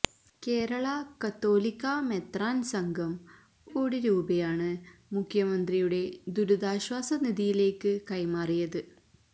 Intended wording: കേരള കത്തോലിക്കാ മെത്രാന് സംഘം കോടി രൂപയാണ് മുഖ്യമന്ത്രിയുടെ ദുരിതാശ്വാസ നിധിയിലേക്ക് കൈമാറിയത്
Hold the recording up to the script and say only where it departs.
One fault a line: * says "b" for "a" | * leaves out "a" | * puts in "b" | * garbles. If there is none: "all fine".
all fine